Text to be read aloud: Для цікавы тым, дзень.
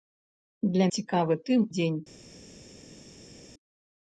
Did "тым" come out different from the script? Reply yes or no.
no